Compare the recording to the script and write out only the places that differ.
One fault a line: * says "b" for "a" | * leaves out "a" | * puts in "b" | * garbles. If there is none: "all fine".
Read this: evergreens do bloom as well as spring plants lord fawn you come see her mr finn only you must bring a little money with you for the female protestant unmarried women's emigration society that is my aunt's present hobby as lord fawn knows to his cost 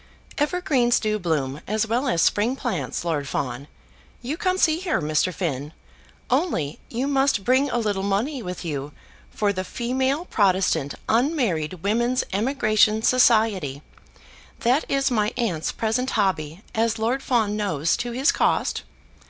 all fine